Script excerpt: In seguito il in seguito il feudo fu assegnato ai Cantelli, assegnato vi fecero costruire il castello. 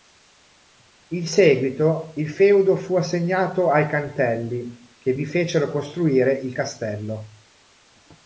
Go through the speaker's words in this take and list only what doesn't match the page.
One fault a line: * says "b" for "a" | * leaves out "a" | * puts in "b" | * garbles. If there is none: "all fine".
* leaves out "in seguito il"
* says "che" for "assegnato"